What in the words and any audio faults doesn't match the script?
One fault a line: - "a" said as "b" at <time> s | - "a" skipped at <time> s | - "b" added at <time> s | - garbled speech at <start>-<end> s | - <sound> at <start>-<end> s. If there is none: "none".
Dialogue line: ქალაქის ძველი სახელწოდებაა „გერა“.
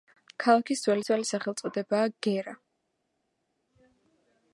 - "ძველი" added at 1.1 s